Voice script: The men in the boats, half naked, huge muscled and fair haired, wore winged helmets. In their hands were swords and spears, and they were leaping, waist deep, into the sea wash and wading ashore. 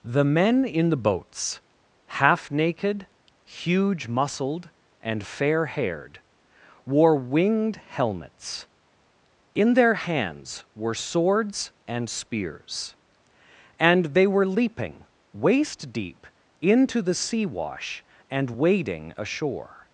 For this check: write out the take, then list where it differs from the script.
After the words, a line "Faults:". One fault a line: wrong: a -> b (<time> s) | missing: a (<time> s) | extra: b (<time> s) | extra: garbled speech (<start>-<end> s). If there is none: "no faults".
The men in the boats, half naked, huge muscled and fair haired, wore winged helmets. In their hands were swords and spears, and they were leaping, waist deep, into the sea wash and wading ashore.
Faults:
no faults